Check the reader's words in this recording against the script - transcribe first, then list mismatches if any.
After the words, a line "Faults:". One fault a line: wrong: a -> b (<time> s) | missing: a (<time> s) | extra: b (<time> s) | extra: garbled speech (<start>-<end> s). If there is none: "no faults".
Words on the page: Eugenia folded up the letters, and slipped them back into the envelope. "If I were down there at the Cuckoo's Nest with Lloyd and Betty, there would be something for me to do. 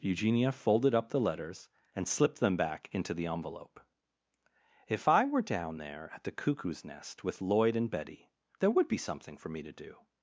Eugenia folded up the letters, and slipped them back into the envelope. "If I were down there at the Cuckoo's Nest with Lloyd and Betty, there would be something for me to do.
Faults:
no faults